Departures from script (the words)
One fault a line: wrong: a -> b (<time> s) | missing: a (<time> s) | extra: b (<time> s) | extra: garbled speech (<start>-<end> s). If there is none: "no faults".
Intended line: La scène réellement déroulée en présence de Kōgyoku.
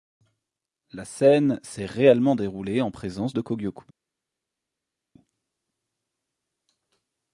extra: s'est (1.6 s)